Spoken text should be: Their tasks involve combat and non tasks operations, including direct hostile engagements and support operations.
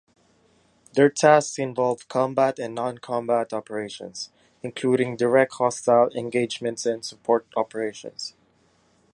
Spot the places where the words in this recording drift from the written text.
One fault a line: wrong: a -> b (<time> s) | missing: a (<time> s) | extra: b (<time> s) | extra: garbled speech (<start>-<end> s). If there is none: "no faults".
wrong: tasks -> combat (3.0 s)